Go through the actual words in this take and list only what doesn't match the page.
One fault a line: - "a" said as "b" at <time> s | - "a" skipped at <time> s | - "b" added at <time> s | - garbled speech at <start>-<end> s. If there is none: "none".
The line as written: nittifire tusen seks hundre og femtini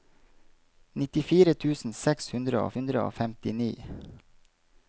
- "hundre og" added at 2.8 s